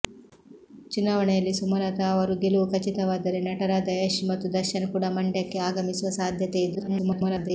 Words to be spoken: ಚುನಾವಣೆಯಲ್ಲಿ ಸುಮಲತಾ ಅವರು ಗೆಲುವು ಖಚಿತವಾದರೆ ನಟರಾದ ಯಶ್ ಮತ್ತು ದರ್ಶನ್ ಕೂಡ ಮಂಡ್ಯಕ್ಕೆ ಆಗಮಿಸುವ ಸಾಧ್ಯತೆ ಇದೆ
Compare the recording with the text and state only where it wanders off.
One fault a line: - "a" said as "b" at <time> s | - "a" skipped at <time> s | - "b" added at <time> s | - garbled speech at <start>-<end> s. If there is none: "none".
- garbled speech at 6.7-7.5 s